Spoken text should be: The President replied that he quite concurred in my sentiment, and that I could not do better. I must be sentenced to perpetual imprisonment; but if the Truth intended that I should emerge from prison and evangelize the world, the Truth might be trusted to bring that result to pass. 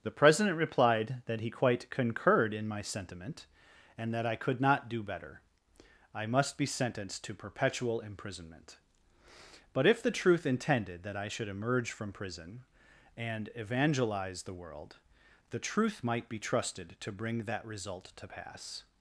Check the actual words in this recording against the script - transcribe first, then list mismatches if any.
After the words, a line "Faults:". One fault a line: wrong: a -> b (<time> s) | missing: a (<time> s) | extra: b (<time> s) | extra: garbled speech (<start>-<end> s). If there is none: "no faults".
The President replied that he quite concurred in my sentiment, and that I could not do better. I must be sentenced to perpetual imprisonment; but if the Truth intended that I should emerge from prison and evangelize the world, the Truth might be trusted to bring that result to pass.
Faults:
no faults